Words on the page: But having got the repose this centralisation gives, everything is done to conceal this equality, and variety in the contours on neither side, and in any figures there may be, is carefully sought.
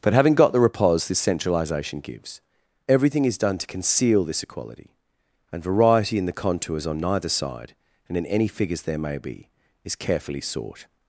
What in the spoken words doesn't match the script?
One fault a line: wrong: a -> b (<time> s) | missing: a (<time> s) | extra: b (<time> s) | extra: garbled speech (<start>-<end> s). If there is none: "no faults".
no faults